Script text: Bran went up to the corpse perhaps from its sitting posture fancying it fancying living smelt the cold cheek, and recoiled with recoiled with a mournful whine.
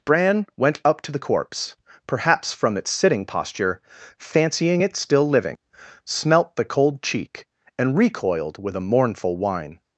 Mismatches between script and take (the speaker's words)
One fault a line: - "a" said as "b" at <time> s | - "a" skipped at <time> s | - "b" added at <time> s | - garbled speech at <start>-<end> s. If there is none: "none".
- "fancying" said as "still" at 4.9 s
- "recoiled with" skipped at 8.8 s